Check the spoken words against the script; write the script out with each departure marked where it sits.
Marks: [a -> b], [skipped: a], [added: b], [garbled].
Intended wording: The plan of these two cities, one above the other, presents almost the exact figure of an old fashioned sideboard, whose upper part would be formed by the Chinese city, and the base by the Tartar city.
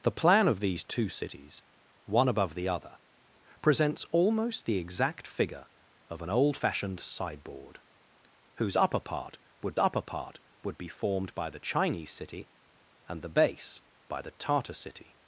The plan of these two cities, one above the other, presents almost the exact figure of an old fashioned sideboard, whose upper part would [added: upper part would] be formed by the Chinese city, and the base by the Tartar city.